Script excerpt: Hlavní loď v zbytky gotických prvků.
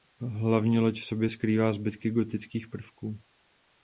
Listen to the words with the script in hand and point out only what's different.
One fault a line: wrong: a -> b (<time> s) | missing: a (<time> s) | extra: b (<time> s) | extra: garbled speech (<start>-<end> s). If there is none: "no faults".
extra: sobě skrývá (1.1 s)